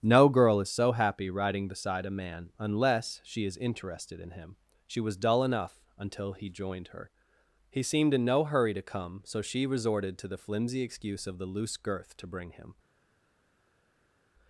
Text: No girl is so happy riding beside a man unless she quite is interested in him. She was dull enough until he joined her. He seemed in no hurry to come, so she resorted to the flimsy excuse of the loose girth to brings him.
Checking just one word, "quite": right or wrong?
wrong